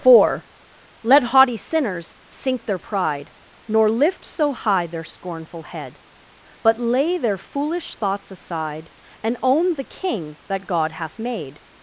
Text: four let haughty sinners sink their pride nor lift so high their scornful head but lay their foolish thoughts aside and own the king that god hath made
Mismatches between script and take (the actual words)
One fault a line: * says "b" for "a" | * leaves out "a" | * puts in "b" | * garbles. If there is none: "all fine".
all fine